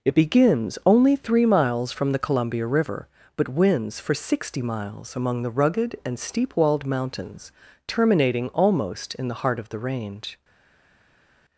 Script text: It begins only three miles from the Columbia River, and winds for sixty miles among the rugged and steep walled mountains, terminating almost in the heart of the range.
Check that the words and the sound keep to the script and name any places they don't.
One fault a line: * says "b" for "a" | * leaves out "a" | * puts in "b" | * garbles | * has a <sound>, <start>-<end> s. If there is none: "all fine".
* says "but" for "and"